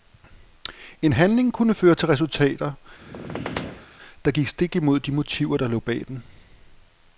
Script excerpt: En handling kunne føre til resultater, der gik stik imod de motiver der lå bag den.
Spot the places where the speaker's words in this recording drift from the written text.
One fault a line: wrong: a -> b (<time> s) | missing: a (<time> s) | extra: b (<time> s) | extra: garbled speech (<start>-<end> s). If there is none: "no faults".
no faults